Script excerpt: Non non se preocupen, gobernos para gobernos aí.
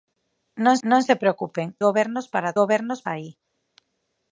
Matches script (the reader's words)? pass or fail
pass